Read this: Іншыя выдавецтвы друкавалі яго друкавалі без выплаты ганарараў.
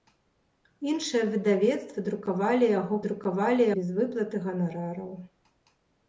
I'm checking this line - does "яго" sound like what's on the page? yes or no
yes